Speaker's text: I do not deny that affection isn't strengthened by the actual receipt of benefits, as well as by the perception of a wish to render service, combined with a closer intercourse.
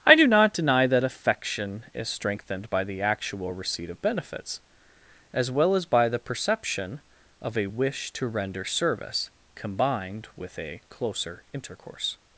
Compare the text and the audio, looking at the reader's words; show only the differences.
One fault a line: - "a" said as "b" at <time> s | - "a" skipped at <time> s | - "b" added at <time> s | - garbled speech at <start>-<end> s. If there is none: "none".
- "isn't" said as "is" at 1.9 s